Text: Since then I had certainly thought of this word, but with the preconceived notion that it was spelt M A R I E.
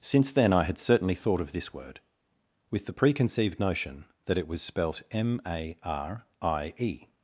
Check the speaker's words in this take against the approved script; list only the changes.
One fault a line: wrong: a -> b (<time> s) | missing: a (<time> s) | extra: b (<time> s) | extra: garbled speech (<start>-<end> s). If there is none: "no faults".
missing: but (2.0 s)